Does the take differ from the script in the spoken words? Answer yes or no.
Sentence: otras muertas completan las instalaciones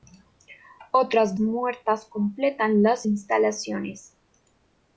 no